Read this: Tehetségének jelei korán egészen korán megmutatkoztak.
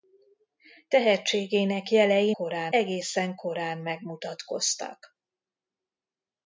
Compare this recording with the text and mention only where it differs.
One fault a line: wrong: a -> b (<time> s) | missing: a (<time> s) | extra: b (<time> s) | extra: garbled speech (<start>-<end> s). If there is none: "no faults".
no faults